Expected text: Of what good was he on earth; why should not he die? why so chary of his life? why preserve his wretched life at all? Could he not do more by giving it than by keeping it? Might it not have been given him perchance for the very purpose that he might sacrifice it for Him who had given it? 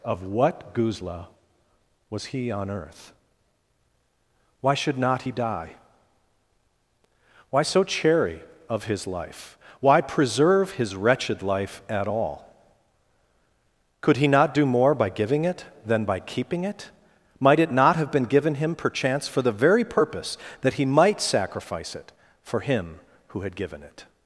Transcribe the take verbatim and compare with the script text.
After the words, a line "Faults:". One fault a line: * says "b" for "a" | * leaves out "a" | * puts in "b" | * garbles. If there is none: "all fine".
Of what guzla was he on earth; why should not he die? why so chary of his life? why preserve his wretched life at all? Could he not do more by giving it than by keeping it? Might it not have been given him perchance for the very purpose that he might sacrifice it for Him who had given it?
Faults:
* says "guzla" for "good"